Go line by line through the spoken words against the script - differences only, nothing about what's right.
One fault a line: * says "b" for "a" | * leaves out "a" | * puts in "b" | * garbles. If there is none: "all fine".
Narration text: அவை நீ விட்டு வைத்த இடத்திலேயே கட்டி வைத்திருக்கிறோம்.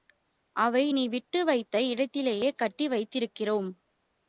all fine